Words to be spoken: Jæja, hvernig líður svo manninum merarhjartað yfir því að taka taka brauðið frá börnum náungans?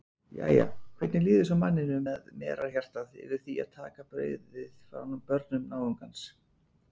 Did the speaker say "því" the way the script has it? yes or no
yes